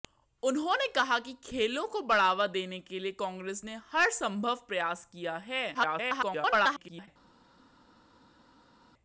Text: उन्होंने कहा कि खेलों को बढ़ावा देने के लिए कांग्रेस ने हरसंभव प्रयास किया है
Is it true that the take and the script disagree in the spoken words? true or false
true